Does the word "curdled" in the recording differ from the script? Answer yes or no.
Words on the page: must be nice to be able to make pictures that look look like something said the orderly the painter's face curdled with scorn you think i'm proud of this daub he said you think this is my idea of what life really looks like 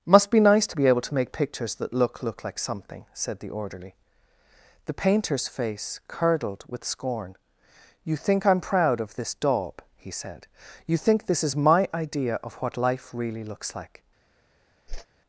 no